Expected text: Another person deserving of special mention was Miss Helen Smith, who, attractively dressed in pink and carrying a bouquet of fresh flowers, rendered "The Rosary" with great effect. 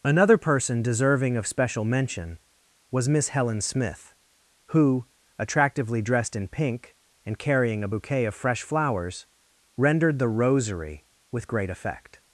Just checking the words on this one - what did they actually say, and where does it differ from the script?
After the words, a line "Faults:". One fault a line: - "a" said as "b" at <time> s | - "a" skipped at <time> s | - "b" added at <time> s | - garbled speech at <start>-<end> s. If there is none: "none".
Another person deserving of special mention was Miss Helen Smith, who, attractively dressed in pink and carrying a bouquet of fresh flowers, rendered "The Rosary" with great effect.
Faults:
none